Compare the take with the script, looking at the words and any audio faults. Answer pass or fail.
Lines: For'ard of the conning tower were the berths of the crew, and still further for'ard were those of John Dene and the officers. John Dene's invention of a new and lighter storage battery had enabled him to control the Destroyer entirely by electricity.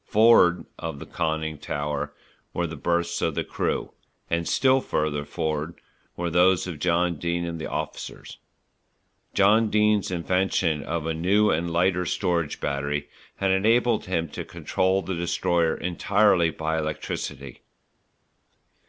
pass